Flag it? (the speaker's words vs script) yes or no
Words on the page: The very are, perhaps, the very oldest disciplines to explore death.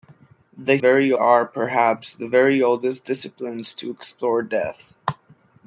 no